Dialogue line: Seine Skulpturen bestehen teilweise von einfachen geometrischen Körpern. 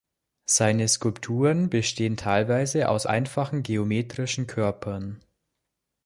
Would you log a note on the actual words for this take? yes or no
yes